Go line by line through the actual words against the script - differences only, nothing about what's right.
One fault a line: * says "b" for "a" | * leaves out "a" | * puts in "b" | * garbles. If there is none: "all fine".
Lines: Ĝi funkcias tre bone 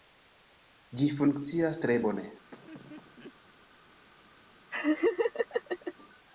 all fine